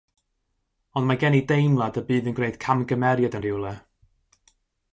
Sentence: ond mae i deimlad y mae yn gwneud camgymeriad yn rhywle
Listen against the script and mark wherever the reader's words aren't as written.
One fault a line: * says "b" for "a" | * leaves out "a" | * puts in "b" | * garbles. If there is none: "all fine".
* puts in "gen"
* says "bydd" for "mae"